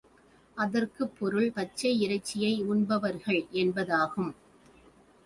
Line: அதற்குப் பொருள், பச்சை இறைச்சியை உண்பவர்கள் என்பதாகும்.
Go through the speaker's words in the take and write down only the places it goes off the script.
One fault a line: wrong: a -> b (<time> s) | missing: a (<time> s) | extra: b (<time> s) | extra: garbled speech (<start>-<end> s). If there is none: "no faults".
no faults